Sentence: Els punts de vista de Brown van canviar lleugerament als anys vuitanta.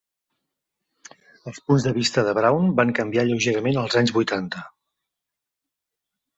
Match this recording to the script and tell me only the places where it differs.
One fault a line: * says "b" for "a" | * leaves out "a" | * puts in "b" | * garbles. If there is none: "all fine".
all fine